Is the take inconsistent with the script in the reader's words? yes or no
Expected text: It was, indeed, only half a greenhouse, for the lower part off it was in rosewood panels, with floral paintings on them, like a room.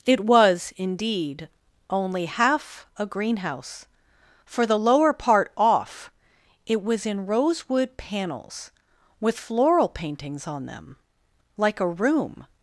no